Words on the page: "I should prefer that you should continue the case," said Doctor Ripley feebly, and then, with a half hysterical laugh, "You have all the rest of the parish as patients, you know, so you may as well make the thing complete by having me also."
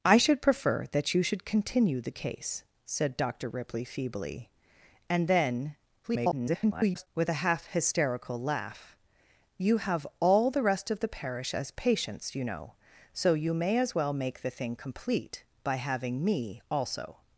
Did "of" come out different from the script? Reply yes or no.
no